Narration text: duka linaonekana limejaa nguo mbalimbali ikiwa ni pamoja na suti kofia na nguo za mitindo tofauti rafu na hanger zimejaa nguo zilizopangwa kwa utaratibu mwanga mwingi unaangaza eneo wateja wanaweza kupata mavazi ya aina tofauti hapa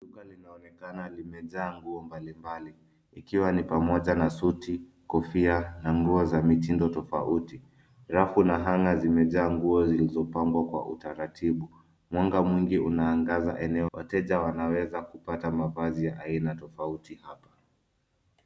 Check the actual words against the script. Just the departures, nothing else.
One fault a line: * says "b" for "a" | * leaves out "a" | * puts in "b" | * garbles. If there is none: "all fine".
all fine